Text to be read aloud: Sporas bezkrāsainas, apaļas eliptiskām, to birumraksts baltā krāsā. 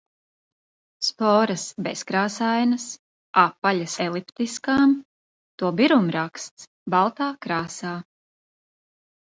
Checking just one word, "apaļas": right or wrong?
right